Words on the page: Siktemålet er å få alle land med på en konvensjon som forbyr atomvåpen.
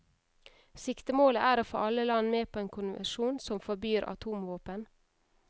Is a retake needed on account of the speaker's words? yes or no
no